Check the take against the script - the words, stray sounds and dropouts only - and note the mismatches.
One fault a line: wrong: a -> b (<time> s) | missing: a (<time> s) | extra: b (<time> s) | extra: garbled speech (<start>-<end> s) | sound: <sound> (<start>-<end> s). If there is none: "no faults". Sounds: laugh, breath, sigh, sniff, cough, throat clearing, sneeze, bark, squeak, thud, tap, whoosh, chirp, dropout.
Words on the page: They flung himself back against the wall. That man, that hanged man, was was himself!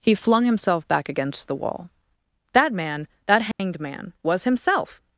wrong: They -> He (0.0 s)
sound: dropout (3.5-3.6 s)
missing: was (4.4 s)